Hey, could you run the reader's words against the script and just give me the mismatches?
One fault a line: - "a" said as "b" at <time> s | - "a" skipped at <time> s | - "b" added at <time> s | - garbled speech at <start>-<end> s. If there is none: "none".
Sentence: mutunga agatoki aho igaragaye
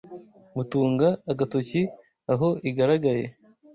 none